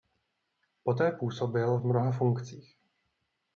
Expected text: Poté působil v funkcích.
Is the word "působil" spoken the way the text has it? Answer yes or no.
yes